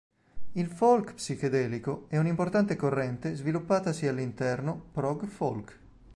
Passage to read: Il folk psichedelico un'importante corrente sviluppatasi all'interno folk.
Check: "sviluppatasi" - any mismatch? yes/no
no